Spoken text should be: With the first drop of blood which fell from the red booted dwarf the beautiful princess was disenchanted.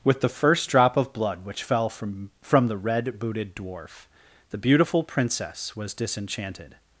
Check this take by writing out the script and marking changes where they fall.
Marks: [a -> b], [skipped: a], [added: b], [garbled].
With the first drop of blood which fell from [added: from] the red booted dwarf the beautiful princess was disenchanted.